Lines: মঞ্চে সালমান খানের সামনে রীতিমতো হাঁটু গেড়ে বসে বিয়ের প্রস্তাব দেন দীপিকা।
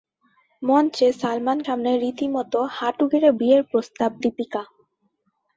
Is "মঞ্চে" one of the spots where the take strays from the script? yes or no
no